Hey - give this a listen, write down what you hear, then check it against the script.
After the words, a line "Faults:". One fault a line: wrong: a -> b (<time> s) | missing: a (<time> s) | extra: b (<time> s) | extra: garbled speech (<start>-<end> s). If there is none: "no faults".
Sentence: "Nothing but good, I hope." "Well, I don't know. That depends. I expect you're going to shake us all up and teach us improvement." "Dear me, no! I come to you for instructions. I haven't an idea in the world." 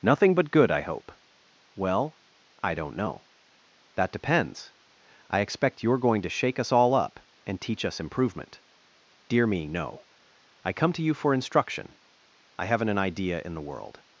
"Nothing but good, I hope." "Well, I don't know. That depends. I expect you're going to shake us all up and teach us improvement." "Dear me, no! I come to you for instruction. I haven't an idea in the world."
Faults:
wrong: instructions -> instruction (11.3 s)